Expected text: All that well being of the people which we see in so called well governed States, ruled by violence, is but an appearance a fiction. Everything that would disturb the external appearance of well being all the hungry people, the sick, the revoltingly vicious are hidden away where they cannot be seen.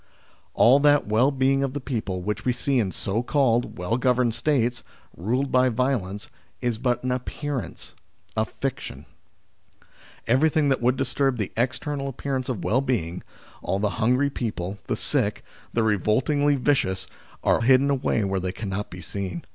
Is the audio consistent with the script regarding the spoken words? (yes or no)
yes